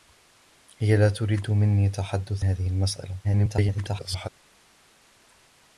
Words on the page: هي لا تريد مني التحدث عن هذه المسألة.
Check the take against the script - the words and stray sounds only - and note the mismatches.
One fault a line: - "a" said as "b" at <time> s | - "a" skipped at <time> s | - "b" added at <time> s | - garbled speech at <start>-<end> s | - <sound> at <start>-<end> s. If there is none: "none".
- "عن" skipped at 2.5 s
- garbled speech at 3.2-4.3 s